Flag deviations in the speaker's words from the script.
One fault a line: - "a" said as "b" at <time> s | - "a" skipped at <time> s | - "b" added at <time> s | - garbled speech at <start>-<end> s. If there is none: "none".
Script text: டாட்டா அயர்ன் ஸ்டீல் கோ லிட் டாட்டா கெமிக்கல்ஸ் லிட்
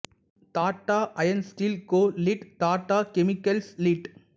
none